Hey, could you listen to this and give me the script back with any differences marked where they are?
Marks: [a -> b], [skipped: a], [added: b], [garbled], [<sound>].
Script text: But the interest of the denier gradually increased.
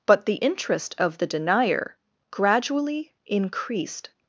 But the interest of the denier gradually increased.